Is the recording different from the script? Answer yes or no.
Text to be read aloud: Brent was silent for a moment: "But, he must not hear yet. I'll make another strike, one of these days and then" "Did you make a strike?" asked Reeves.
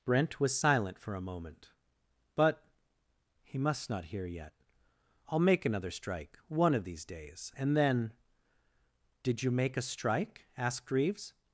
no